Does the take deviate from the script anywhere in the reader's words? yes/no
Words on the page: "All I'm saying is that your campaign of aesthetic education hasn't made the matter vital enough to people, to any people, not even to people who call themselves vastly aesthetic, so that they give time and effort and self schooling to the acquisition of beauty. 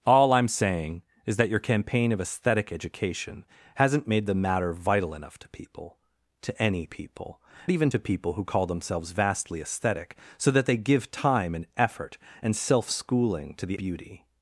yes